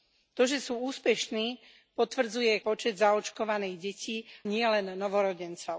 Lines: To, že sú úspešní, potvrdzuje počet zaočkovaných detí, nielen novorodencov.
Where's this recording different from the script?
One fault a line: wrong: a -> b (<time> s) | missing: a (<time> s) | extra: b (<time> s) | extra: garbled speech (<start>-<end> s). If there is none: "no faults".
no faults